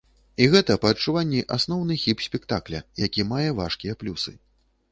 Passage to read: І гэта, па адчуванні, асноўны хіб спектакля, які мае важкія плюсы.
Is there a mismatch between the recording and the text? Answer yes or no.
no